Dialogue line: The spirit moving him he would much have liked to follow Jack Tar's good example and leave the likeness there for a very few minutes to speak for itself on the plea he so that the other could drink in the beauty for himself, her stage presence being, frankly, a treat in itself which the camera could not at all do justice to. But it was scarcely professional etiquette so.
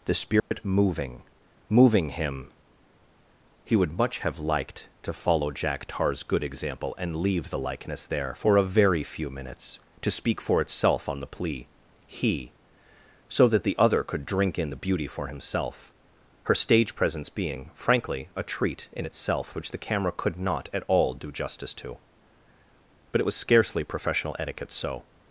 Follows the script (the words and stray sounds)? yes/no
no